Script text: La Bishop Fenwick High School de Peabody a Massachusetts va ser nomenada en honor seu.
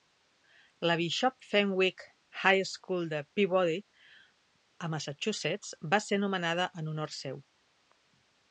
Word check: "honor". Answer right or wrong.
right